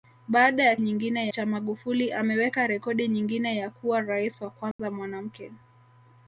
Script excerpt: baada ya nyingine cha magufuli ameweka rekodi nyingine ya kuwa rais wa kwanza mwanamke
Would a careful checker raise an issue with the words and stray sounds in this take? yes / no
yes